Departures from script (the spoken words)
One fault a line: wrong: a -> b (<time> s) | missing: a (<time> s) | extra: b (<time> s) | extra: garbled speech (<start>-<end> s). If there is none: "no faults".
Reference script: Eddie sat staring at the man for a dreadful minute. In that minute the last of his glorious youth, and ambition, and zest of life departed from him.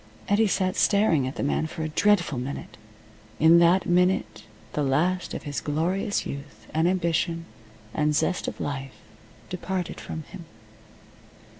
no faults